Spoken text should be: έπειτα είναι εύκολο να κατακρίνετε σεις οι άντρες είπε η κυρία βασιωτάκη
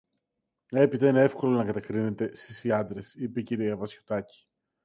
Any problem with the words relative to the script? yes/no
no